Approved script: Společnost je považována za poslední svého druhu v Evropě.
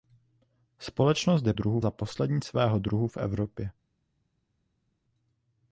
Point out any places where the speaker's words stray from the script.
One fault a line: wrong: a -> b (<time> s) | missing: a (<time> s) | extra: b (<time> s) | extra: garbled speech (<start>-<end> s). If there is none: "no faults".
wrong: považována -> druhu (1.5 s)